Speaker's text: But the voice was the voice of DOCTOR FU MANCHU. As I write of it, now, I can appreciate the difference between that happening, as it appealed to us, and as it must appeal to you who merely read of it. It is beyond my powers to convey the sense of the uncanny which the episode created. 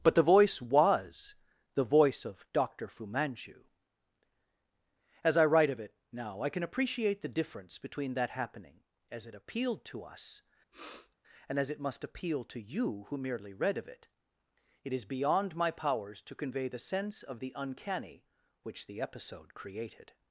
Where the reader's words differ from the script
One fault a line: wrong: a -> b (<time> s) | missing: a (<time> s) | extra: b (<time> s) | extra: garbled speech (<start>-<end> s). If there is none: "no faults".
no faults